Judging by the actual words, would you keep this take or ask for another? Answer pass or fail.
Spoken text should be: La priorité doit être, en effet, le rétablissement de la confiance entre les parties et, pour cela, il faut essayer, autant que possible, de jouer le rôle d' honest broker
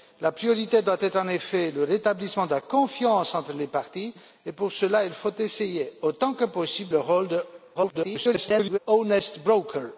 fail